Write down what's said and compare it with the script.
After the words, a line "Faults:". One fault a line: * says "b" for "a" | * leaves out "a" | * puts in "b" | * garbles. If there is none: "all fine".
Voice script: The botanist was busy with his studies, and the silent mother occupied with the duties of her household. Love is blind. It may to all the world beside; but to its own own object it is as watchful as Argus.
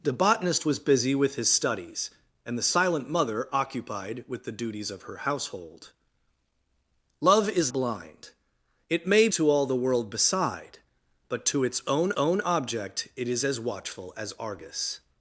The botanist was busy with his studies, and the silent mother occupied with the duties of her household. Love is blind. It may to all the world beside; but to its own own object it is as watchful as Argus.
Faults:
all fine